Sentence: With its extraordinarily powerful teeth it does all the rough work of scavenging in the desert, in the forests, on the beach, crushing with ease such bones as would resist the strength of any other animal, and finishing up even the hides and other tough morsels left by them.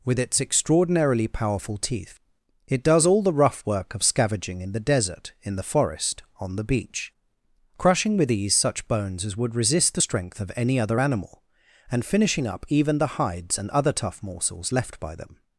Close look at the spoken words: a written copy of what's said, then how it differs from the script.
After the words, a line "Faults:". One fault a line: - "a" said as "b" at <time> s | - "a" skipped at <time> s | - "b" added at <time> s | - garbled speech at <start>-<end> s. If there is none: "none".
With its extraordinarily powerful teeth it does all the rough work of scavenging in the desert, in the forest, on the beach, crushing with ease such bones as would resist the strength of any other animal, and finishing up even the hides and other tough morsels left by them.
Faults:
- "forests" said as "forest" at 5.7 s